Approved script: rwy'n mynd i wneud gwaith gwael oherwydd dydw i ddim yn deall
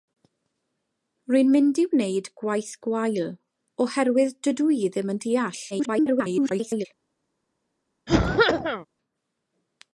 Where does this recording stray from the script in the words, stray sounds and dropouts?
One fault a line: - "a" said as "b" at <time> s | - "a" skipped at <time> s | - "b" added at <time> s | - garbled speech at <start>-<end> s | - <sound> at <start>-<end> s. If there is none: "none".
- garbled speech at 5.7-6.9 s
- cough at 8.1-8.9 s